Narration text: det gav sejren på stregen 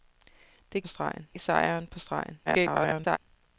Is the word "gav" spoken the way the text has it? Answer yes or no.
no